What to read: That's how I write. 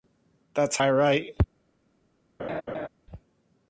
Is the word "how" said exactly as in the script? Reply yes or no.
no